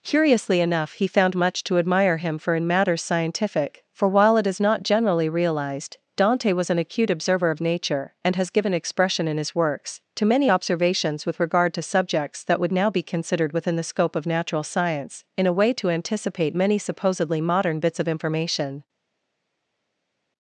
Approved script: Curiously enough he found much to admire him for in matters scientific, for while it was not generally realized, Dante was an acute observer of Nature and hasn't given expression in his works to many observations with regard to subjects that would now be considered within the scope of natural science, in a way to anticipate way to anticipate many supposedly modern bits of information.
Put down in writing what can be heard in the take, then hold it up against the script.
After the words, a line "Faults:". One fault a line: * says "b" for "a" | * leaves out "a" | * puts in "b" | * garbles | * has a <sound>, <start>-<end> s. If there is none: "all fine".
Curiously enough he found much to admire him for in matters scientific, for while it is not generally realized, Dante was an acute observer of Nature and has given expression in his works to many observations with regard to subjects that would now be considered within the scope of natural science, in a way to anticipate many supposedly modern bits of information.
Faults:
* says "is" for "was"
* says "has" for "hasn't"
* leaves out "way to anticipate"